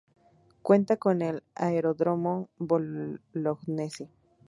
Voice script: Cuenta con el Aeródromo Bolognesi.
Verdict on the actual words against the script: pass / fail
pass